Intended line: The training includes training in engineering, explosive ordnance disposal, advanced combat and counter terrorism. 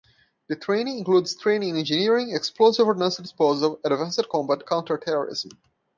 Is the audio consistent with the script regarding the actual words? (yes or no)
no